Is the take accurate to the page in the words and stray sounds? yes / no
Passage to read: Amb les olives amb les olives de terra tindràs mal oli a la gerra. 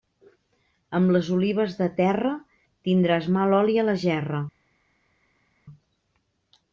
no